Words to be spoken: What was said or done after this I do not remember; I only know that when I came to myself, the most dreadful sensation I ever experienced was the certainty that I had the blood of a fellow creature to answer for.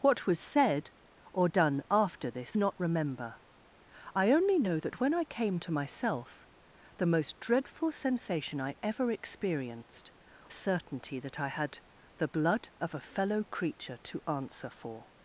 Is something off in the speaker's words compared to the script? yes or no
yes